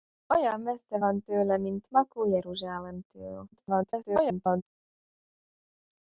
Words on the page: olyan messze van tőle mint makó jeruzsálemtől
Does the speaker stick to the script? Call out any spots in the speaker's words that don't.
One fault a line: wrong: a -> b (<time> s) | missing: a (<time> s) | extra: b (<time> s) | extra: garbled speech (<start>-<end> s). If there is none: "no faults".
extra: garbled speech (3.5-4.6 s)